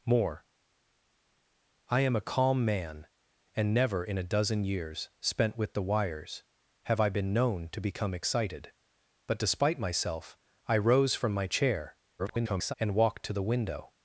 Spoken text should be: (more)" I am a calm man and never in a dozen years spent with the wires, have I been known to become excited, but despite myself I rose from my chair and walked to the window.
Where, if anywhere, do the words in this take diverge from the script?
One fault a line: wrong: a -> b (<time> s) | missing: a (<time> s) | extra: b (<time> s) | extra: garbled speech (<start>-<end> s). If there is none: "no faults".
extra: garbled speech (12.2-12.7 s)